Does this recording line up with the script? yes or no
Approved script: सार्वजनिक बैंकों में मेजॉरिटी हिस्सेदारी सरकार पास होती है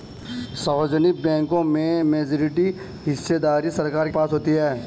yes